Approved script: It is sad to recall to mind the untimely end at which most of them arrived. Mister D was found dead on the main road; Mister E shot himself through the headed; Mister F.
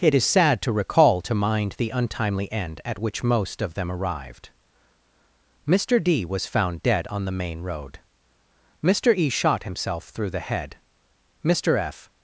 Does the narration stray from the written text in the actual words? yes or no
yes